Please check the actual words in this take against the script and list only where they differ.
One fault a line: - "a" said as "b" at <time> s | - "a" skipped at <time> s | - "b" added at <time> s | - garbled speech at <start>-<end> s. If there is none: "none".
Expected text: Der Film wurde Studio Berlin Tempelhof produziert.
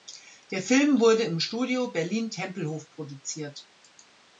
- "im" added at 1.2 s